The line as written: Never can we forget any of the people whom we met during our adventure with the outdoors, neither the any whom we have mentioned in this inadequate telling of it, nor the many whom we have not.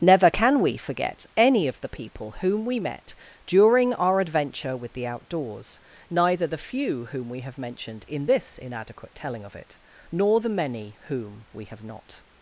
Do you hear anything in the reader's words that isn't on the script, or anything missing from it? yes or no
yes